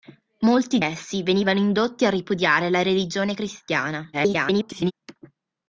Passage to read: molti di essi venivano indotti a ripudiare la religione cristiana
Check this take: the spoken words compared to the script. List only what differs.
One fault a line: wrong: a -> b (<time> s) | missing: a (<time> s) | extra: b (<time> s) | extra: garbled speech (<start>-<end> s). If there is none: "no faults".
missing: di (0.8 s)
extra: garbled speech (4.1-4.9 s)